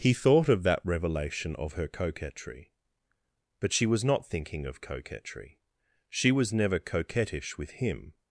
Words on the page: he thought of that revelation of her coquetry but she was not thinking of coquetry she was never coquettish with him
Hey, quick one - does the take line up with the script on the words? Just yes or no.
yes